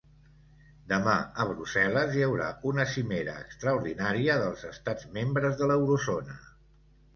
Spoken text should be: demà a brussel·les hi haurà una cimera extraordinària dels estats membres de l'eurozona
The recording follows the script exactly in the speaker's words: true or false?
true